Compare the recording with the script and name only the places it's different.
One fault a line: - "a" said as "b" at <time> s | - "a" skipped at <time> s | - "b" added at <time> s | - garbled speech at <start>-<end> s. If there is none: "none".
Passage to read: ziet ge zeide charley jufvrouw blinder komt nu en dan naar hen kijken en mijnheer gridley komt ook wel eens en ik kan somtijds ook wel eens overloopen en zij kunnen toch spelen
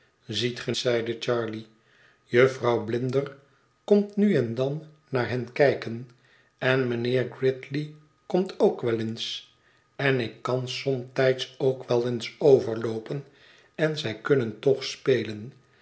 none